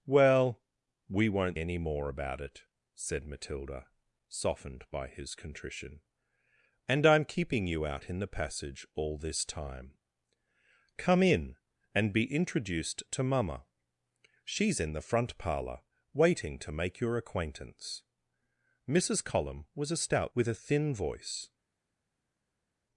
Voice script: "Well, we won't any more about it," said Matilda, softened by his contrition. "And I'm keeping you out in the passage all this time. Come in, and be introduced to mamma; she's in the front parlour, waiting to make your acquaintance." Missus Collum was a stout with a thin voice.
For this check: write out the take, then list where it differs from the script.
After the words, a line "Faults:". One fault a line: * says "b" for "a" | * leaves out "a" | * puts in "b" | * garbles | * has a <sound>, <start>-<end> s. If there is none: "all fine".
"Well, we won't any more about it," said Matilda, softened by his contrition. "And I'm keeping you out in the passage all this time. Come in, and be introduced to mamma; she's in the front parlour, waiting to make your acquaintance." Missus Collum was a stout with a thin voice.
Faults:
all fine